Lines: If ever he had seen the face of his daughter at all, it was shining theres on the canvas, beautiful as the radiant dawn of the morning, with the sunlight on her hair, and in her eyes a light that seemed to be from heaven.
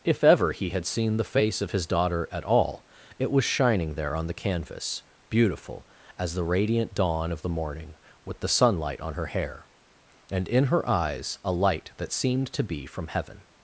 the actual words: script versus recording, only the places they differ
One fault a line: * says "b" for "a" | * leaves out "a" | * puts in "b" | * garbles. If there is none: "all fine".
* says "there" for "theres"